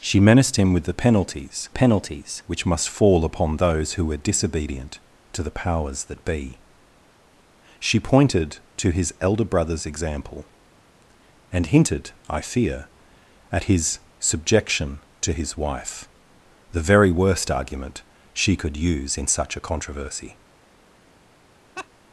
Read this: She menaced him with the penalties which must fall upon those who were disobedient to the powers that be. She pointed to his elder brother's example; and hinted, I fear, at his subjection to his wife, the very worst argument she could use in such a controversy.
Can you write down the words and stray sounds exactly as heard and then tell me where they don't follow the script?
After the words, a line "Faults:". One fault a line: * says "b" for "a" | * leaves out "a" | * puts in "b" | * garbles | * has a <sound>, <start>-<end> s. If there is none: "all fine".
She menaced him with the penalties penalties which must fall upon those who were disobedient to the powers that be. She pointed to his elder brother's example; and hinted, I fear, at his subjection to his wife, the very worst argument she could use in such a controversy.
Faults:
* puts in "penalties"
* has a laugh, 21.8-21.9 s